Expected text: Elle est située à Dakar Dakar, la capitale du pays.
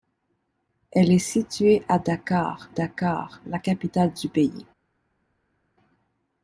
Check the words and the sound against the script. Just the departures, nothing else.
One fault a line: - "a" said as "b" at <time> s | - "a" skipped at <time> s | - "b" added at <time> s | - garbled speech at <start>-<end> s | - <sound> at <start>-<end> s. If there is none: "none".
none